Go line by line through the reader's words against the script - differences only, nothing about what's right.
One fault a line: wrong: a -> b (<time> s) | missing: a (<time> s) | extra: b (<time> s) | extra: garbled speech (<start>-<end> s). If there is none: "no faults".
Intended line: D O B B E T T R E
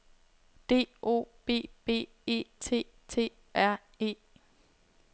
no faults